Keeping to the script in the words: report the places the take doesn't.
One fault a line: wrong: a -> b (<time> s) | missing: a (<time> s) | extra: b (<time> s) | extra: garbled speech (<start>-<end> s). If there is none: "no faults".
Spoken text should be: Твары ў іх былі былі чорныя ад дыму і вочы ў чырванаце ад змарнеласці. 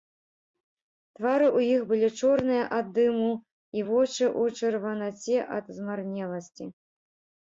missing: былі (2.1 s)